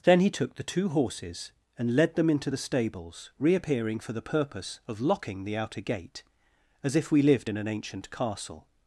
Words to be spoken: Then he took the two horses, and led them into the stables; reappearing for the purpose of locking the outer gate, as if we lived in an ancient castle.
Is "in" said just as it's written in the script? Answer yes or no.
yes